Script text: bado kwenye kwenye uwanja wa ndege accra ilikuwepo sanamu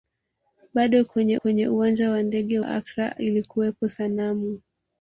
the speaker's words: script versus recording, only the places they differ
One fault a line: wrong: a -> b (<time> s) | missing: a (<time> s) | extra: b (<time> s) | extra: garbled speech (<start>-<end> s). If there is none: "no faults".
no faults